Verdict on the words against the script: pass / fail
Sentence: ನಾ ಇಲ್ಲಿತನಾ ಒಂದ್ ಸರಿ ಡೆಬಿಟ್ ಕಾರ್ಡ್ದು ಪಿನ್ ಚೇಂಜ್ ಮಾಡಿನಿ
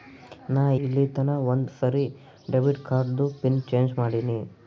pass